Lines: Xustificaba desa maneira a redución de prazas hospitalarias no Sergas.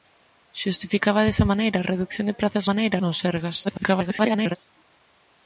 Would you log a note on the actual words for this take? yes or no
yes